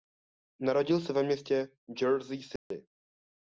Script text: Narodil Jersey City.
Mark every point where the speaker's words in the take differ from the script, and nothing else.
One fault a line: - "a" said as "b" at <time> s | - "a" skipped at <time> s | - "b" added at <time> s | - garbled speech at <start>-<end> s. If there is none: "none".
- "se ve městě" added at 1.0 s